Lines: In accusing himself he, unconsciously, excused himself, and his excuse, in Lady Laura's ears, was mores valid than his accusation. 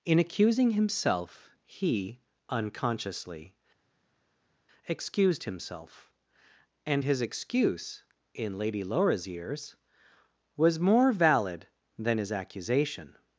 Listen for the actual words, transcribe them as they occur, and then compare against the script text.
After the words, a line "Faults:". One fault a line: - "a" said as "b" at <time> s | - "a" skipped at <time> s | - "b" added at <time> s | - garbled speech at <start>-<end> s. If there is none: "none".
In accusing himself he, unconsciously, excused himself, and his excuse, in Lady Laura's ears, was more valid than his accusation.
Faults:
- "mores" said as "more" at 10.8 s